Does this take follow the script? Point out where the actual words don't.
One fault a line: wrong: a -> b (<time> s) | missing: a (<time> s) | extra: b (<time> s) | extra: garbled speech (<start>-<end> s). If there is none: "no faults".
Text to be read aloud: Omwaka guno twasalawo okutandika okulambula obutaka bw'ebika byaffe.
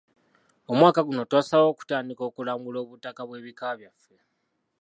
no faults